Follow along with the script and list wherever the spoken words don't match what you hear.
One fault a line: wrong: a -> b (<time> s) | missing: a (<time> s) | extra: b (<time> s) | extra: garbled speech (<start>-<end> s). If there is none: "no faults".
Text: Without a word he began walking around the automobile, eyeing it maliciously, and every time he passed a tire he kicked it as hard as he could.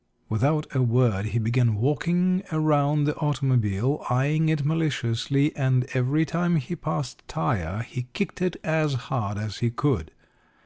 no faults